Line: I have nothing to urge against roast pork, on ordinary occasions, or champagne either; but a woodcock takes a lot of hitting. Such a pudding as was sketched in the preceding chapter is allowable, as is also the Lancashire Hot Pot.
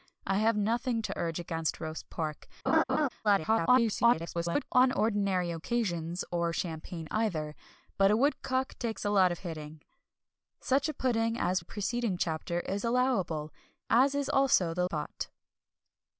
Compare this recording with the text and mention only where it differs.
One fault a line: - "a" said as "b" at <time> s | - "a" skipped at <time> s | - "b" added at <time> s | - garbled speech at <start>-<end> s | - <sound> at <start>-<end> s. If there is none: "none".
- laugh at 2.7-3.1 s
- garbled speech at 3.2-4.7 s
- "was sketched in" skipped at 11.6 s
- "Lancashire Hot" skipped at 14.8 s